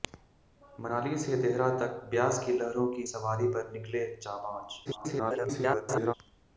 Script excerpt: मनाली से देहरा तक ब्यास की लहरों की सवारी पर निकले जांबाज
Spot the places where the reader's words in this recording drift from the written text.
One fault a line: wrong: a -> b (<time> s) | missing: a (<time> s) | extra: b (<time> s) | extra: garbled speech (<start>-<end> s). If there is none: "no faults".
extra: garbled speech (4.8-6.1 s)